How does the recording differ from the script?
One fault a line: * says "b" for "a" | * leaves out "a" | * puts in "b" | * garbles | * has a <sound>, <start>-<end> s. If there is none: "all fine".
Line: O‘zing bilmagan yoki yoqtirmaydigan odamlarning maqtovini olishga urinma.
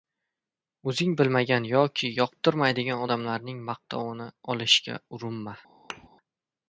* has a thud, 5.9-6.1 s